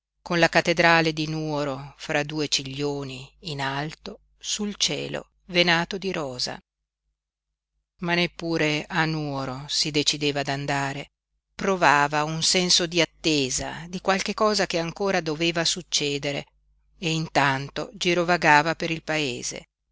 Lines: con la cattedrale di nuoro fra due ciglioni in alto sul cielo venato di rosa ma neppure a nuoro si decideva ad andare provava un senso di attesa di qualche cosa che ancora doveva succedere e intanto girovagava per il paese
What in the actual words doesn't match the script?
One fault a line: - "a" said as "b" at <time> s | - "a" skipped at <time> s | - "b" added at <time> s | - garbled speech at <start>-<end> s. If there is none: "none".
none